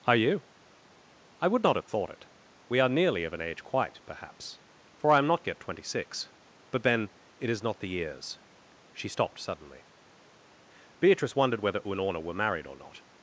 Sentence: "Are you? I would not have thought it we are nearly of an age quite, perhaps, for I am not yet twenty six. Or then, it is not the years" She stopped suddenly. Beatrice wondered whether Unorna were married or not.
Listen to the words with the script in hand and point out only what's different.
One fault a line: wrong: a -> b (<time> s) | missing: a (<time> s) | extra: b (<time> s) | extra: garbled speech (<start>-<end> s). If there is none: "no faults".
wrong: Or -> But (6.7 s)